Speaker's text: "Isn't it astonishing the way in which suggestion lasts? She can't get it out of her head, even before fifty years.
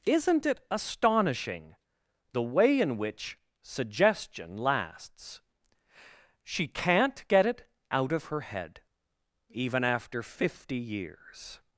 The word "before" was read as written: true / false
false